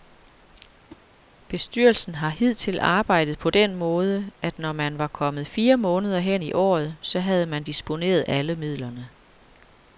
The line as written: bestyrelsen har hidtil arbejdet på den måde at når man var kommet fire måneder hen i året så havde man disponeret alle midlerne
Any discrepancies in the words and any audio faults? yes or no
yes